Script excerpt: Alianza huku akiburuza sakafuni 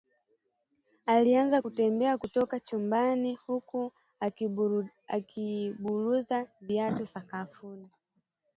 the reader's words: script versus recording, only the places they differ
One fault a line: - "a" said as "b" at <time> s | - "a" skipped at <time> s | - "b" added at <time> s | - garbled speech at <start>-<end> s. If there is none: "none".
- "kutembea kutoka chumbani" added at 1.6 s
- "viatu" added at 6.6 s